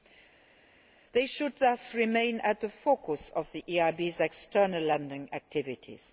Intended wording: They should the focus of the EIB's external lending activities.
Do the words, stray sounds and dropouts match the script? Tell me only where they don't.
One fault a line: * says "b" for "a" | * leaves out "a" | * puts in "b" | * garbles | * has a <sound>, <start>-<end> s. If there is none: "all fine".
* puts in "thus remain at"